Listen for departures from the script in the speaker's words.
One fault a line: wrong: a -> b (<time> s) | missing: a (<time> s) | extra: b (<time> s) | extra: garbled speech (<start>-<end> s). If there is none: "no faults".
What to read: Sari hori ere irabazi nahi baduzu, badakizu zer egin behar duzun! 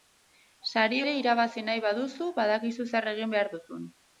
missing: hori (1.0 s)